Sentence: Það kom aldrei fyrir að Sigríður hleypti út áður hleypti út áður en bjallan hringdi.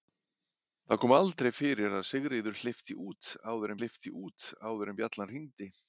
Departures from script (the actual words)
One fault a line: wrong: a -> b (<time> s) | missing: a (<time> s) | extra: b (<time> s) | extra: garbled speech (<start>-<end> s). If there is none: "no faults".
no faults